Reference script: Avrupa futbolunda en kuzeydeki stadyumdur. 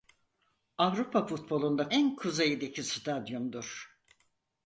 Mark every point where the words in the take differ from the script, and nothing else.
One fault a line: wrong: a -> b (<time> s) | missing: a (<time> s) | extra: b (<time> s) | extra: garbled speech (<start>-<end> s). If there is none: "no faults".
no faults